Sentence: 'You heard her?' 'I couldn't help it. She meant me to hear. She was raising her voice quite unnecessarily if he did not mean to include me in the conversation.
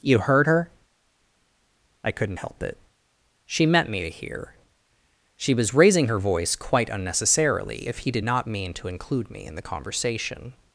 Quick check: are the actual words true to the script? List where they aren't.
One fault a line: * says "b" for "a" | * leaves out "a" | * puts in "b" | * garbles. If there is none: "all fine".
all fine